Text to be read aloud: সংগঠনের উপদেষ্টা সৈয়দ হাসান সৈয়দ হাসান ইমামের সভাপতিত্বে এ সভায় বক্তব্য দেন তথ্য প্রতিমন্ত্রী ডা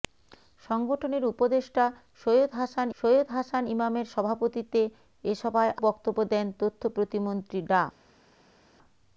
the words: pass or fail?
pass